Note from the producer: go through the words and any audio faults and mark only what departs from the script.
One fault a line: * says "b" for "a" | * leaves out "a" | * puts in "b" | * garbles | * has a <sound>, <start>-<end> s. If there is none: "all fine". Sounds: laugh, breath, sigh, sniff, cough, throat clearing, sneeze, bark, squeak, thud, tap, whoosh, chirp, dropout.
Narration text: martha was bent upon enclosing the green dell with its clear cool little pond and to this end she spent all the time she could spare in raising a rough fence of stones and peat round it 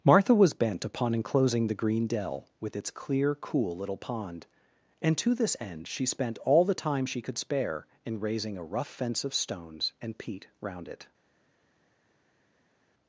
all fine